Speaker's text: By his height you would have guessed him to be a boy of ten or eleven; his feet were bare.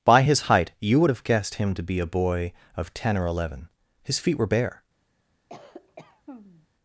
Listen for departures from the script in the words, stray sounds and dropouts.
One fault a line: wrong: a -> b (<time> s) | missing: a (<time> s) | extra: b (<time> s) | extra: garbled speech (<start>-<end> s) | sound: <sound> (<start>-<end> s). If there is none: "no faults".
sound: cough (5.5-6.7 s)